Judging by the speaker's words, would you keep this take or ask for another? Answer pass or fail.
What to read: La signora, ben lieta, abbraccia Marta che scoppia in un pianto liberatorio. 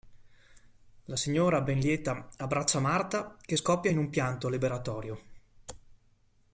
pass